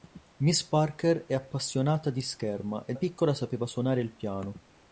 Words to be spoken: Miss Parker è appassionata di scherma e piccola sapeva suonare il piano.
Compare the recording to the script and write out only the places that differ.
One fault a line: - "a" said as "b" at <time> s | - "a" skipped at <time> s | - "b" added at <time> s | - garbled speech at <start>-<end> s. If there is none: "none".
none